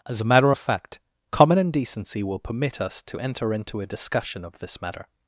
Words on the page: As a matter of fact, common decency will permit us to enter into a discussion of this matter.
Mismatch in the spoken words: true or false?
false